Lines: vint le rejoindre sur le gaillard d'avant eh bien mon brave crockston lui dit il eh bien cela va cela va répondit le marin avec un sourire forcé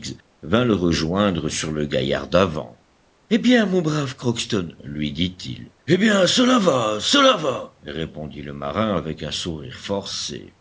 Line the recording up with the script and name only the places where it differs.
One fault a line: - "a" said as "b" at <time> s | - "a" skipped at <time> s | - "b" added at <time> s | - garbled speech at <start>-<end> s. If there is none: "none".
none